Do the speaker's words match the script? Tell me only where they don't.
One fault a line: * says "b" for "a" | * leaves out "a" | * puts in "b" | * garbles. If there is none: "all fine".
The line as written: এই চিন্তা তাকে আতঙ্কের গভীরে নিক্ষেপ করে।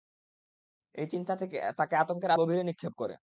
all fine